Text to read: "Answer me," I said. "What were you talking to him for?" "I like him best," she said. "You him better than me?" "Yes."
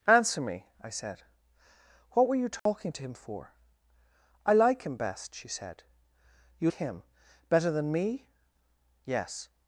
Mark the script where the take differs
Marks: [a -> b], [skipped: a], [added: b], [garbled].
"Answer me," I said. "What were you talking to him for?" "I like him best," she said. "You him better than me?" "Yes."